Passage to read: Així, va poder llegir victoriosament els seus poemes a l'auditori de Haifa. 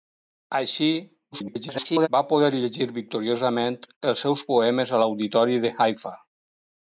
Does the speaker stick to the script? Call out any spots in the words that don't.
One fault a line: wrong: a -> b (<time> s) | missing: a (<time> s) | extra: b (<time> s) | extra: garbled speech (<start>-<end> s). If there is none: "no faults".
extra: garbled speech (1.3-2.1 s)